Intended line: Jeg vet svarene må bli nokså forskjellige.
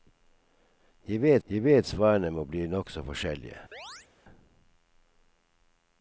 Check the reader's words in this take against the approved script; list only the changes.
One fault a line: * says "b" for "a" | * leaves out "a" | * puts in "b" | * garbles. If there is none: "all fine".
* puts in "jeg vet"